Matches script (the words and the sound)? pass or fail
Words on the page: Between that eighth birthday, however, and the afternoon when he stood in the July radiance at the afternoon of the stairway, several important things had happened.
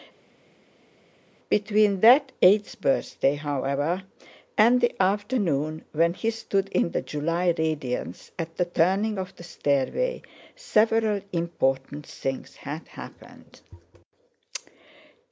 fail